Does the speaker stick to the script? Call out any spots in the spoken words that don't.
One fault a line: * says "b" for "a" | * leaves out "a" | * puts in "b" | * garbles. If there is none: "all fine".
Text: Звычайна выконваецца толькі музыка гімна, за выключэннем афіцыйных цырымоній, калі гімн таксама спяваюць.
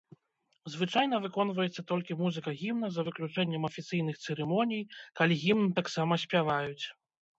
all fine